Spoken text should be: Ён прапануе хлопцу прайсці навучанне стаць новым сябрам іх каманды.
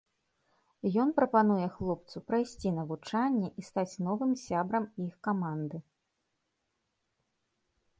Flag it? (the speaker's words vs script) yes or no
yes